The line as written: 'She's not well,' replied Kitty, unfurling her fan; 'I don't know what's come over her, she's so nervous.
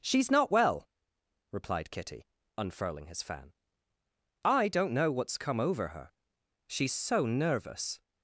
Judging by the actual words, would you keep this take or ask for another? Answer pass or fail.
fail